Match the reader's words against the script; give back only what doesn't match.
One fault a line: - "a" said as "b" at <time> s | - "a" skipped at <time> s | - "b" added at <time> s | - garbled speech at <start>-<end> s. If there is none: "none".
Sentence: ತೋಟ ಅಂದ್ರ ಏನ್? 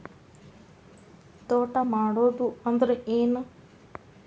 - "ಮಾಡುದು" added at 1.9 s